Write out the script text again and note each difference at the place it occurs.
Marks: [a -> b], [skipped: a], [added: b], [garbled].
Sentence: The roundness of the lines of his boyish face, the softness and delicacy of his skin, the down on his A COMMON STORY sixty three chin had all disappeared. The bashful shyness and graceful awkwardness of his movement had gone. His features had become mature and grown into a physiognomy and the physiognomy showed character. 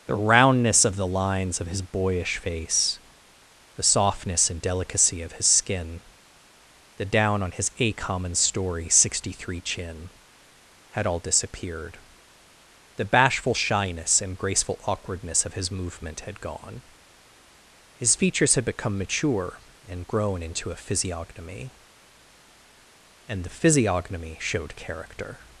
The roundness of the lines of his boyish face, the softness and delicacy of his skin, the down on his A COMMON STORY sixty three chin had all disappeared. The bashful shyness and graceful awkwardness of his movement had gone. His features had become mature and grown into a physiognomy and the physiognomy showed character.